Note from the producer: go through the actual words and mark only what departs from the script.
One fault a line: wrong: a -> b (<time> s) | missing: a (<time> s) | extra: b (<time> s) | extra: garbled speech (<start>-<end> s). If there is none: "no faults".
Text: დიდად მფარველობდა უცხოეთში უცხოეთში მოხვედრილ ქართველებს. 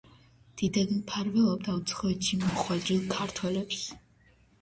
missing: უცხოეთში (2.4 s)